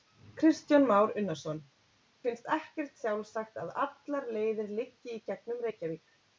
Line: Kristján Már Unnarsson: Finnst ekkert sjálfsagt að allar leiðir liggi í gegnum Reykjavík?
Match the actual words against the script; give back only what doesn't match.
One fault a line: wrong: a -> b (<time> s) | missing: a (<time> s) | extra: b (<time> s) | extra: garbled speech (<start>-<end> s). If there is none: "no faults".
no faults